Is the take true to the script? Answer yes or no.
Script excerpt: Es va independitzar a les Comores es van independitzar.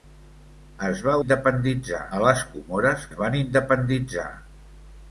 yes